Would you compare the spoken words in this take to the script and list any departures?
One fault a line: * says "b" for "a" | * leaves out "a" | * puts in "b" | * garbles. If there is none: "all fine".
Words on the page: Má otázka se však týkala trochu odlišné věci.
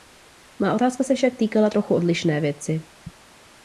all fine